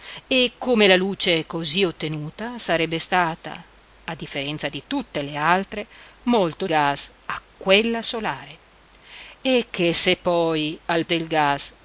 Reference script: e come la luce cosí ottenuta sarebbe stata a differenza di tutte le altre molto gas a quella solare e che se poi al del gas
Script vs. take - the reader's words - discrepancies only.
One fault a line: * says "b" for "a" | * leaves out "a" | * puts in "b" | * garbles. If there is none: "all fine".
all fine